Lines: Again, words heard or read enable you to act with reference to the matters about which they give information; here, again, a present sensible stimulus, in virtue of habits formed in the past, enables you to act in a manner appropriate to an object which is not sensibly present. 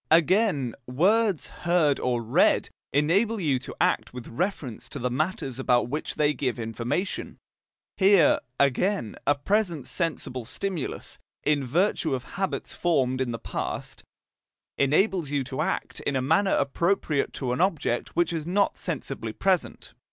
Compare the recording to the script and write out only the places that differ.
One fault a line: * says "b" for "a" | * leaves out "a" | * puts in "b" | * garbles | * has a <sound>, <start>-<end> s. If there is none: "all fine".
all fine